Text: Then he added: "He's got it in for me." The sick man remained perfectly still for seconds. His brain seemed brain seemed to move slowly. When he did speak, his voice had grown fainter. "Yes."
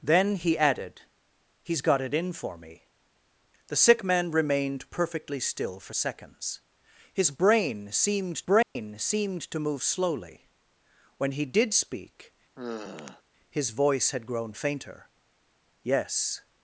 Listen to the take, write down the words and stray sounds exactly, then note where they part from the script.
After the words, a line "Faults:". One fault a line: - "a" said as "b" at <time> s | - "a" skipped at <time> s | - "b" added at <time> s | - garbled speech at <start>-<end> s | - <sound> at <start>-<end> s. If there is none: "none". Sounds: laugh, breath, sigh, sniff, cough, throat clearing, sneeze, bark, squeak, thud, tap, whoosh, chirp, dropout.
Then he added: "He's got it in for me." The sick man remained perfectly still for seconds. His brain seemed brain seemed to move slowly. When he did speak, his voice had grown fainter. "Yes."
Faults:
- dropout at 8.6-8.8 s
- sigh at 12.6-13.2 s